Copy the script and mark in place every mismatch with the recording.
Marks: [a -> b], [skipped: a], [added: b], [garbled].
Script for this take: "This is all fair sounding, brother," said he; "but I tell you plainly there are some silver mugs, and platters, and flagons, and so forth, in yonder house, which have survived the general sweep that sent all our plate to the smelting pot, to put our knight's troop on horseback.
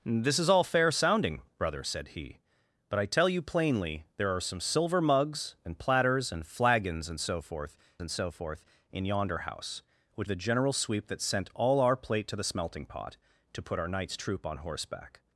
"This is all fair sounding, brother," said he; "but I tell you plainly there are some silver mugs, and platters, and flagons, and so forth, [added: and so forth] in yonder house, which [skipped: have survived] the general sweep that sent all our plate to the smelting pot, to put our knight's troop on horseback.